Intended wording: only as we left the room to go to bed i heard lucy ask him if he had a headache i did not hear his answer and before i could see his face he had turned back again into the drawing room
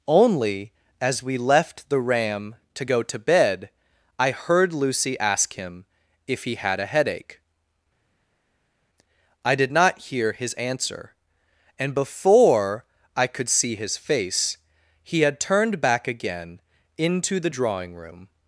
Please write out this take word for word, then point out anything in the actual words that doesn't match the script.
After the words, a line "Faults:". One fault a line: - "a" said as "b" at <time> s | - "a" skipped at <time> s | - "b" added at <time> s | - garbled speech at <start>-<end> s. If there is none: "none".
only as we left the ram to go to bed i heard lucy ask him if he had a headache i did not hear his answer and before i could see his face he had turned back again into the drawing room
Faults:
- "room" said as "ram" at 2.0 s